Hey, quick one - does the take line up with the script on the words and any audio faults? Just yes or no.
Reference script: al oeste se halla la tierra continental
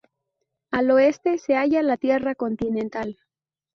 yes